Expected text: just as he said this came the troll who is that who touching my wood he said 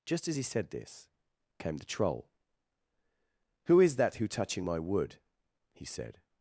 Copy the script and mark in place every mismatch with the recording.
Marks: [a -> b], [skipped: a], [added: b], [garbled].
just as he said this came the troll who is that who touching my wood he said